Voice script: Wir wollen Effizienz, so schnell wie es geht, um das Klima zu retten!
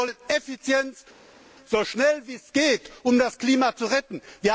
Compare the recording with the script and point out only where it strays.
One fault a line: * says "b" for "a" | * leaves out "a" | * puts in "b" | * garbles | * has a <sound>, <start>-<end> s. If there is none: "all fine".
all fine